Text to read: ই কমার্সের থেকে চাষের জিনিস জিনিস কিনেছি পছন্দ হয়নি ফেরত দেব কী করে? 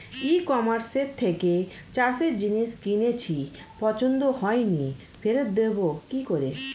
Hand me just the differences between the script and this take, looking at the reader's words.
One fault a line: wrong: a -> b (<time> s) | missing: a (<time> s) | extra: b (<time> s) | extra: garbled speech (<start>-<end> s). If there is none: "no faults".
missing: জিনিস (2.7 s)